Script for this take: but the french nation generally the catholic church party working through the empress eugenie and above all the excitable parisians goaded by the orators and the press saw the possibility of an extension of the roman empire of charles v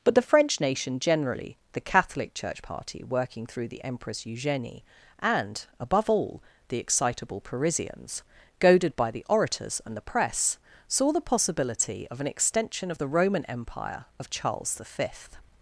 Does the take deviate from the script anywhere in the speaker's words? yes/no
no